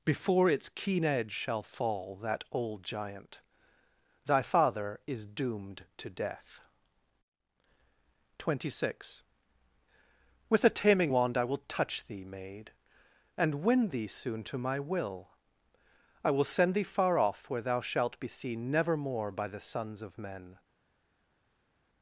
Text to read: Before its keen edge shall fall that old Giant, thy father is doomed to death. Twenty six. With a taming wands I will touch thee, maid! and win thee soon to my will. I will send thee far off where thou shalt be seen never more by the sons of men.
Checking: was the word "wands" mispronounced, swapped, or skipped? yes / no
yes